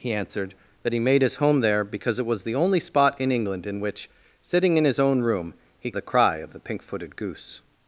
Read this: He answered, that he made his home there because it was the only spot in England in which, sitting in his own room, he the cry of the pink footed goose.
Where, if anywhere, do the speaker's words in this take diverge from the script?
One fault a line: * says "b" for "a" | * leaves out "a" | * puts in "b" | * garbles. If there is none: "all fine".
all fine